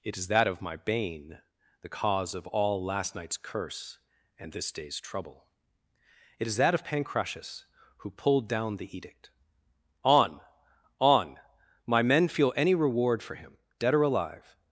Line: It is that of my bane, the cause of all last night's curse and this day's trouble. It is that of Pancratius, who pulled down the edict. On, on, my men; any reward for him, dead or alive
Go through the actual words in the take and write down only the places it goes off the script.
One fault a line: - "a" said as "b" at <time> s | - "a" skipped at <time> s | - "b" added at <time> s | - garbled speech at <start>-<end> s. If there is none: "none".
- "feel" added at 12.3 s